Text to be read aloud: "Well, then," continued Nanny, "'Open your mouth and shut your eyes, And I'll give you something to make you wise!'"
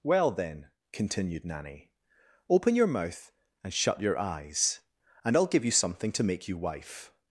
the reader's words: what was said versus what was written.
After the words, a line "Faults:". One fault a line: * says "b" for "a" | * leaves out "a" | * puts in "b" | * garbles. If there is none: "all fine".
"Well, then," continued Nanny, "'Open your mouth and shut your eyes, And I'll give you something to make you wife!'"
Faults:
* says "wife" for "wise"